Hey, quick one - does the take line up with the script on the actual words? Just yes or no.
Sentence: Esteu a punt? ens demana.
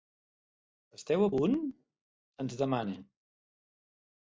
yes